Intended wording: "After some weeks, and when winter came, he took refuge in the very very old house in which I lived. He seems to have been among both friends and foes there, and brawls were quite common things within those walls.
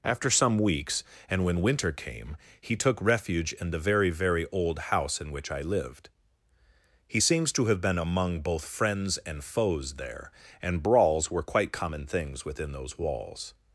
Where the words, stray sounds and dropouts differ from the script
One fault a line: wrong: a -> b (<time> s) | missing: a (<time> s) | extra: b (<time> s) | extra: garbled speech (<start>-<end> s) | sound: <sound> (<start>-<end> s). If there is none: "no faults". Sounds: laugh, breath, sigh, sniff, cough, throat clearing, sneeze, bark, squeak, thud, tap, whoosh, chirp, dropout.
no faults